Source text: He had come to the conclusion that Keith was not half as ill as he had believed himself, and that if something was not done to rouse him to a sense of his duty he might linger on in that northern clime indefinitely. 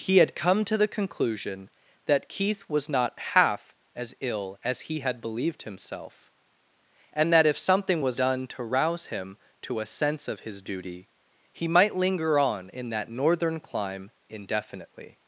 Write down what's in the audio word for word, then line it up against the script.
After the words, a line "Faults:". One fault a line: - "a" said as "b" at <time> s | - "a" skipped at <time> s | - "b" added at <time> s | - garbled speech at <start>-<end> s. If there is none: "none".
He had come to the conclusion that Keith was not half as ill as he had believed himself, and that if something was done to rouse him to a sense of his duty he might linger on in that northern clime indefinitely.
Faults:
- "not" skipped at 8.2 s